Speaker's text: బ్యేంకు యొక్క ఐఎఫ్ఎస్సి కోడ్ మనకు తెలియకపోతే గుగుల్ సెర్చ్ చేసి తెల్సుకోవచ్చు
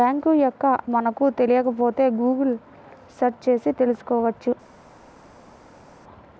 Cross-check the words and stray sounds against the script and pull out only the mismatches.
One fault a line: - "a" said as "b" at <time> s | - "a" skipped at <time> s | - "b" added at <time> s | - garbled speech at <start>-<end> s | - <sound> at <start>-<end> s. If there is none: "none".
- "ఐఎఫ్ఎస్సి కోడ్" skipped at 0.7 s